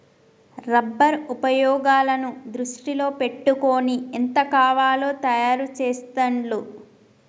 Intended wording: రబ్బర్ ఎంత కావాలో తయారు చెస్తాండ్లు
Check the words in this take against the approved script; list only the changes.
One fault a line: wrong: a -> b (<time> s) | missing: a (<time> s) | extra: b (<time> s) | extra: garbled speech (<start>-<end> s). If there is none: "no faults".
extra: ఉపయోగాలను దృష్టిలో పెట్టుకొని (1.3 s)